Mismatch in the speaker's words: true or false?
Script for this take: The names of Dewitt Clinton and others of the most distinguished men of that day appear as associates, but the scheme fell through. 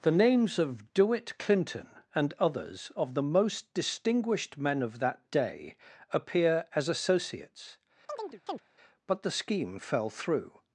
false